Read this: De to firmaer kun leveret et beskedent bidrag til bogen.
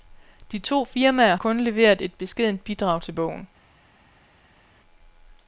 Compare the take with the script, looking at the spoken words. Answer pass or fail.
pass